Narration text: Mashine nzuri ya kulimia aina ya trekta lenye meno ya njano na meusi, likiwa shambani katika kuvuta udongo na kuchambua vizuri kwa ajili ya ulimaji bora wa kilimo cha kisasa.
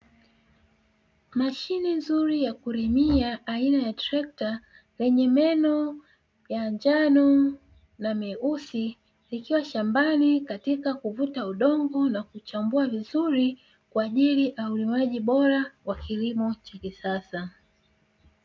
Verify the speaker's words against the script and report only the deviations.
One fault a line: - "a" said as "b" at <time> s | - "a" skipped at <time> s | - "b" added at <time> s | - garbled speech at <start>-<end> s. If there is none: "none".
none